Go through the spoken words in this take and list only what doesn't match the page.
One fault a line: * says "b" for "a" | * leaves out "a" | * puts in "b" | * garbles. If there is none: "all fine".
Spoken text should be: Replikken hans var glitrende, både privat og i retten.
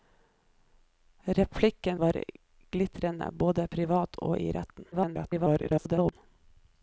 * leaves out "hans"
* garbles